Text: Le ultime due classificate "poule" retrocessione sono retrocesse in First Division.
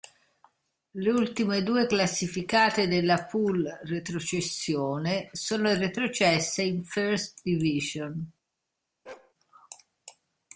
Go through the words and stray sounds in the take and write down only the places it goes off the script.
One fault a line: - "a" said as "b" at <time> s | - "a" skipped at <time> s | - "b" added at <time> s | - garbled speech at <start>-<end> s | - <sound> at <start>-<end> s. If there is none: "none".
- "della" added at 2.9 s
- bark at 9.1-9.3 s